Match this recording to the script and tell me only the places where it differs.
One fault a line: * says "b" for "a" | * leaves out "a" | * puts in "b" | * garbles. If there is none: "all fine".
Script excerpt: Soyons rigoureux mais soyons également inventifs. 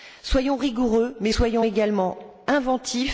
all fine